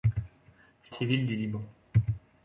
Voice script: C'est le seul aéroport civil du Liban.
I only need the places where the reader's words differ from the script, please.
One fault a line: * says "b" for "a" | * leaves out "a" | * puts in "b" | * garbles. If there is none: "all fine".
* leaves out "le seul aéroport"